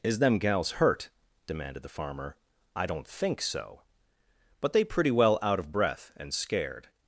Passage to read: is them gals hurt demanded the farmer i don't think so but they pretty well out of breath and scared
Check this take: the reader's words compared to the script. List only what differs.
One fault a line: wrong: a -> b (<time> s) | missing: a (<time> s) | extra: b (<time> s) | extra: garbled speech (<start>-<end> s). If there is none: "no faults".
no faults